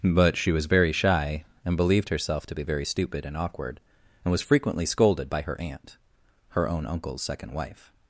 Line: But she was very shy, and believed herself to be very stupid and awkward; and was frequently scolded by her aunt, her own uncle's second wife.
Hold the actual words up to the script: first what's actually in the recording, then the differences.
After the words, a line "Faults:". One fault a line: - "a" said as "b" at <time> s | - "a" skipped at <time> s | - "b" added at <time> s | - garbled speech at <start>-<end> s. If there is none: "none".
But she was very shy, and believed herself to be very stupid and awkward; and was frequently scolded by her aunt, her own uncle's second wife.
Faults:
none